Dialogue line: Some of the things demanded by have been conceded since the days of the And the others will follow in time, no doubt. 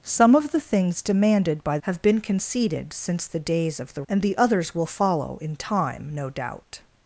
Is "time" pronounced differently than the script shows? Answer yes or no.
no